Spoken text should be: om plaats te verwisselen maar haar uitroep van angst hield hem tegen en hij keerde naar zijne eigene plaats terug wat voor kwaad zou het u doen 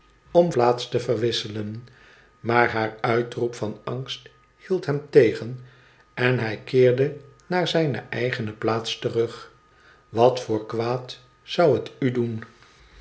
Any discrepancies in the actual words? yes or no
no